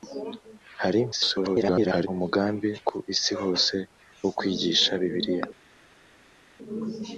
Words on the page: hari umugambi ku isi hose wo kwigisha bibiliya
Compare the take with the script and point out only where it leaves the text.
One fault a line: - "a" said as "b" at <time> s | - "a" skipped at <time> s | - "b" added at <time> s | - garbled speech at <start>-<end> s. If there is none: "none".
- garbled speech at 1.1-2.1 s